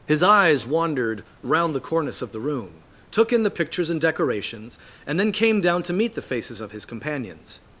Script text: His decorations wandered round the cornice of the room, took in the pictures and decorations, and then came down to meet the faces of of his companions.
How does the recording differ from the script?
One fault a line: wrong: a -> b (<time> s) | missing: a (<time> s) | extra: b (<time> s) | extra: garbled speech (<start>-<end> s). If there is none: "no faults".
wrong: decorations -> eyes (0.2 s)
missing: of (6.7 s)